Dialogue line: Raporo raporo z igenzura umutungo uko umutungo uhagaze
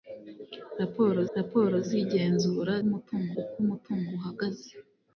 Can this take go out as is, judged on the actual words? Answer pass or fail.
pass